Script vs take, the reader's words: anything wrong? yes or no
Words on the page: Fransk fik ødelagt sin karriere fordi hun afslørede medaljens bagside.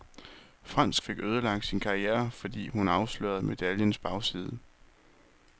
no